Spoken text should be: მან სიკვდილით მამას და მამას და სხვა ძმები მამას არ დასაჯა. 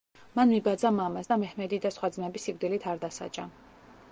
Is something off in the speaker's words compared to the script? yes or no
yes